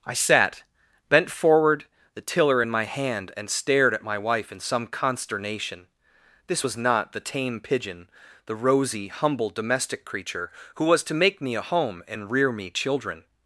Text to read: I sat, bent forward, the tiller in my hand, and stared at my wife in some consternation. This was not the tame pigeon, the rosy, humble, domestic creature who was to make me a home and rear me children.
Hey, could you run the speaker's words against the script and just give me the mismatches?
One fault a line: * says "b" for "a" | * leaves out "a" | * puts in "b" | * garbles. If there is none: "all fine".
all fine